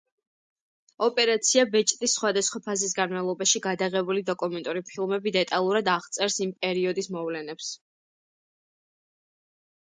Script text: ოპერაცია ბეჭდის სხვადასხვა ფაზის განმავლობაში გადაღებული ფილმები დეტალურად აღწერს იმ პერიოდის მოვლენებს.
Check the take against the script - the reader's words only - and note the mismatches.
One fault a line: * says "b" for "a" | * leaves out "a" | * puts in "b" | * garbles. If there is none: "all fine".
* puts in "დოკუმენტური"